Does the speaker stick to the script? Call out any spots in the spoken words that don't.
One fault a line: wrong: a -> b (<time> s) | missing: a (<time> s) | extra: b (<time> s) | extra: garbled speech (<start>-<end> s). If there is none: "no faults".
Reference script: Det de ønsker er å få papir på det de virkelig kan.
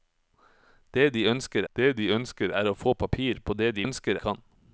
extra: det de ønsker (1.8 s)
wrong: virkelig -> ønsker (3.8 s)